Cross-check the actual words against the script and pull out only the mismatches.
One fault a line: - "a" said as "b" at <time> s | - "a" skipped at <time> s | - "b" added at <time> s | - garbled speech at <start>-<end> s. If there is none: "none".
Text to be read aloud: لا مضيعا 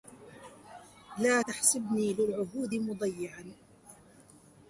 - "تحسبني للعهود" added at 1.4 s